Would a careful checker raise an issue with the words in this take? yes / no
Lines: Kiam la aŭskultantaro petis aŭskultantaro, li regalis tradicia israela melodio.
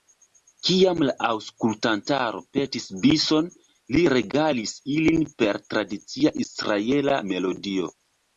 yes